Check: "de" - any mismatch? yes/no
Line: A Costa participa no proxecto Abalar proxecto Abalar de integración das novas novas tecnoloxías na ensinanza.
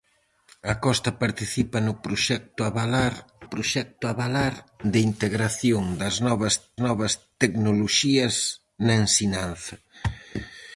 no